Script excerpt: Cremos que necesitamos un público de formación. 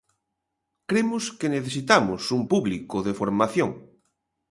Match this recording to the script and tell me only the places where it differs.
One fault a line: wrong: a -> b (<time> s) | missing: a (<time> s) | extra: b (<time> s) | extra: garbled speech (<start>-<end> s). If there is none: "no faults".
no faults